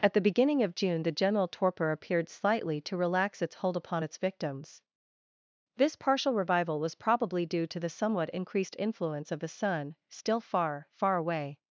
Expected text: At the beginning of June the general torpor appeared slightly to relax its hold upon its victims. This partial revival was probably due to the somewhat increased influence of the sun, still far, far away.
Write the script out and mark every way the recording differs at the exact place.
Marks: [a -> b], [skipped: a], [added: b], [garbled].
At the beginning of June the general torpor appeared slightly to relax its hold upon its victims. This partial revival was probably due to the somewhat increased influence of the sun, still far, far away.